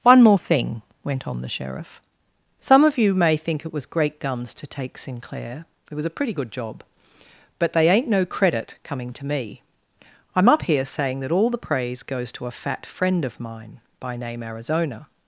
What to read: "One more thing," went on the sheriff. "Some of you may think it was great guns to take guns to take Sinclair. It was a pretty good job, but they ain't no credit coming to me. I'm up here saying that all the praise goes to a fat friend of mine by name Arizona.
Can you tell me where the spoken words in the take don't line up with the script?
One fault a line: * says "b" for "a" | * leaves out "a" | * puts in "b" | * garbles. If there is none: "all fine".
* leaves out "guns to take"